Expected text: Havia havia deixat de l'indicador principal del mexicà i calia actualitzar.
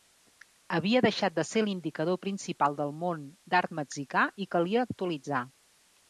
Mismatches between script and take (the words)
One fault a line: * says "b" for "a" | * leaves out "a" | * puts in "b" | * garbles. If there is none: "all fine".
* leaves out "havia"
* puts in "ser"
* puts in "món d'art"